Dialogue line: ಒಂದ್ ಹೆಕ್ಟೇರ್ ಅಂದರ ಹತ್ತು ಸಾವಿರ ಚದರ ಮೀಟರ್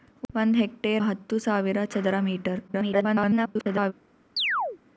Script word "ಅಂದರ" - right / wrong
wrong